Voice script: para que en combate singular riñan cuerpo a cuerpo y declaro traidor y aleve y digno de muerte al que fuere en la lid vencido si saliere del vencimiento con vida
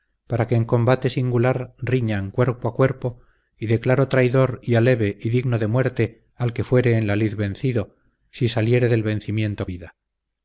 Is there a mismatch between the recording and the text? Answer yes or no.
yes